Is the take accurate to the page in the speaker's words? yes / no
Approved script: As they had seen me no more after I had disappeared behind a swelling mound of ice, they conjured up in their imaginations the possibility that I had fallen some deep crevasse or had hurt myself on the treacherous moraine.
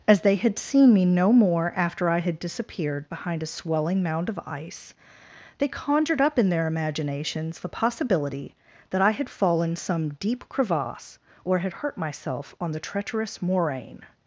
yes